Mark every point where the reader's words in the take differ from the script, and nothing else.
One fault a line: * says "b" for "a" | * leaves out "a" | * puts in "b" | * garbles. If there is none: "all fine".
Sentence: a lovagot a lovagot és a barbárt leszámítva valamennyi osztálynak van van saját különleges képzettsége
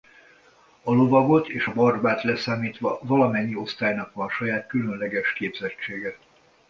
* leaves out "a lovagot"
* leaves out "van"